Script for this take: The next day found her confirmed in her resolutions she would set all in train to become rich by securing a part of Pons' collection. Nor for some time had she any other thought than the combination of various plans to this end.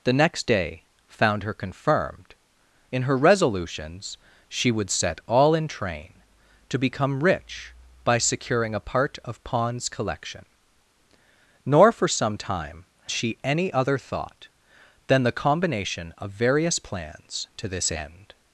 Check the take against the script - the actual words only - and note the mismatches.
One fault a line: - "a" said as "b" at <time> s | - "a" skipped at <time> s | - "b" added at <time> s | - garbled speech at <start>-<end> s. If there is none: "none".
- "had" skipped at 12.8 s